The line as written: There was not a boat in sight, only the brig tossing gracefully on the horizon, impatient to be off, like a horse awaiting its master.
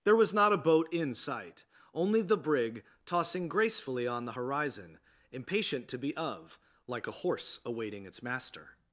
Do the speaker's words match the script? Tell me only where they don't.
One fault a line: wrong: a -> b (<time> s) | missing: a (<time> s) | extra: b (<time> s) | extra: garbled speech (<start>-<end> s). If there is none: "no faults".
wrong: off -> of (6.1 s)